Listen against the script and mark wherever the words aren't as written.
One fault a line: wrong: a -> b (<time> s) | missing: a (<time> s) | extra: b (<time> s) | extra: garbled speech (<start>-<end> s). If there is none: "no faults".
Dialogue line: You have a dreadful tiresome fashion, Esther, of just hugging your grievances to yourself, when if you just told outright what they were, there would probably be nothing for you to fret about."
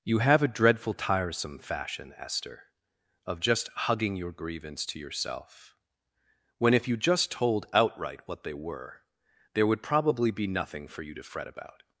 wrong: grievances -> grievance (4.3 s)